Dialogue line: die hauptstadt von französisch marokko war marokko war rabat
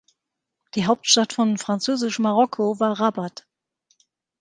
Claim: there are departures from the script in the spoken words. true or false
true